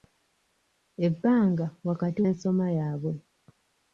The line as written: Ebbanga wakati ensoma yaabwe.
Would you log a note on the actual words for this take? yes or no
no